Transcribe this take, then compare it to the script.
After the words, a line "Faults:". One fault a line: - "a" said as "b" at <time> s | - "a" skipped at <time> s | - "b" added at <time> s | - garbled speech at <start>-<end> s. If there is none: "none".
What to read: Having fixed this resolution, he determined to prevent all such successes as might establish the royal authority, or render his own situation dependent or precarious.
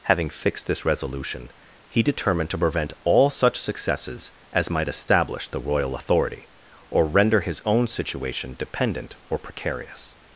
Having fixed this resolution, he determined to prevent all such successes as might establish the royal authority, or render his own situation dependent or precarious.
Faults:
none